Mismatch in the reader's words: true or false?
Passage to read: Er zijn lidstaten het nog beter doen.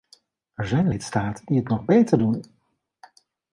true